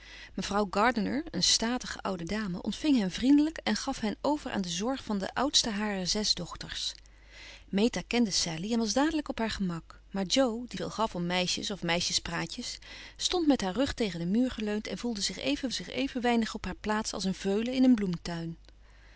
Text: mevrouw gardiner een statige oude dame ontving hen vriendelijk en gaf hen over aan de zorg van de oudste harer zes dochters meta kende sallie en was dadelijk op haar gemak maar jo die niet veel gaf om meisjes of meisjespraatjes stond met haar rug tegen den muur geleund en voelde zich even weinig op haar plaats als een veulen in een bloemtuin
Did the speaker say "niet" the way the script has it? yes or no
no